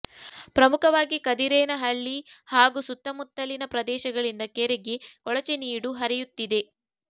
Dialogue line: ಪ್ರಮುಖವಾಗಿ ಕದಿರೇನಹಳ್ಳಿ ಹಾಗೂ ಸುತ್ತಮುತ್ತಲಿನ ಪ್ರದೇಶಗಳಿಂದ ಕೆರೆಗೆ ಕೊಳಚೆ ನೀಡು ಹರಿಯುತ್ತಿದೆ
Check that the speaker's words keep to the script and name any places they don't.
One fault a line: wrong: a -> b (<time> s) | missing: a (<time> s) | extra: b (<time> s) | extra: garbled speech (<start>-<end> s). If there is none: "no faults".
no faults